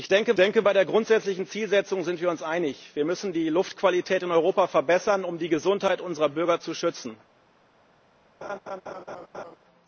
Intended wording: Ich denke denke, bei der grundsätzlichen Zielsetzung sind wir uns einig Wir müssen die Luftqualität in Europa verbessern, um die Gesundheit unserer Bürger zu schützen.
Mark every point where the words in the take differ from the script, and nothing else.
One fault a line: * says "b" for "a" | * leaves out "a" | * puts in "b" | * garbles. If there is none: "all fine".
all fine